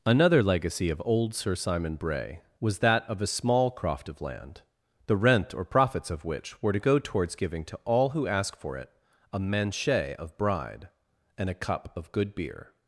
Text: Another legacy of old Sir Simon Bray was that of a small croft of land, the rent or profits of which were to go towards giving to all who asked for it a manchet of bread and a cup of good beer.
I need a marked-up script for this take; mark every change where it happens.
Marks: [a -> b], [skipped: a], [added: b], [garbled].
Another legacy of old Sir Simon Bray was that of a small croft of land, the rent or profits of which were to go towards giving to all who [asked -> ask] for it a manchet of [bread -> bride] and a cup of good beer.